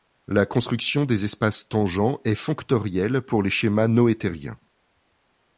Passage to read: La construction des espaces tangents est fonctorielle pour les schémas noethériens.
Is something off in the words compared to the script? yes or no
no